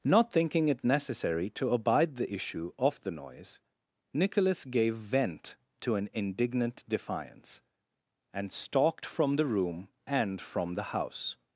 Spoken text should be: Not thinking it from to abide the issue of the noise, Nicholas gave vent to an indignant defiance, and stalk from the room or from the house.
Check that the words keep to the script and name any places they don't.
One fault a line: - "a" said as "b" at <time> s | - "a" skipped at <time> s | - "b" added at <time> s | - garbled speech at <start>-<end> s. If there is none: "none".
- "from" said as "necessary" at 0.8 s
- "stalk" said as "stalked" at 8.5 s
- "or" said as "and" at 10.1 s